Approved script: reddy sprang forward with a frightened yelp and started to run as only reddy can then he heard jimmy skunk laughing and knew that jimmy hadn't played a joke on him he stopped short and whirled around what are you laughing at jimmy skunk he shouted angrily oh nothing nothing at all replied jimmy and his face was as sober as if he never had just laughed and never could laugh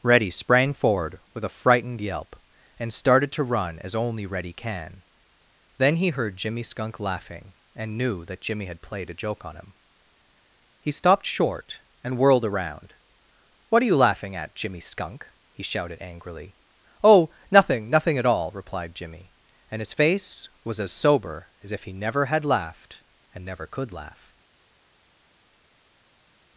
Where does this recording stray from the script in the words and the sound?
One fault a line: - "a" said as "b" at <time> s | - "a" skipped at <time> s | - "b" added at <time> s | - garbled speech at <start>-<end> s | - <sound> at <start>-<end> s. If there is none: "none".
- "hadn't" said as "had" at 8.7 s
- "just" skipped at 22.4 s